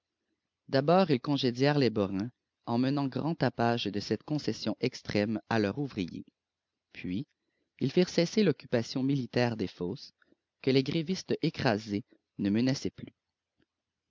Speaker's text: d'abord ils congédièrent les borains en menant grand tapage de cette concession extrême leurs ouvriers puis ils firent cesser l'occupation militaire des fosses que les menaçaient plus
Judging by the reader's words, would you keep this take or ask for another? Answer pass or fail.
fail